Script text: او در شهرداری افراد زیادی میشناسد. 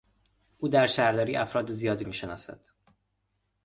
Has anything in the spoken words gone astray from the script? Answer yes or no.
no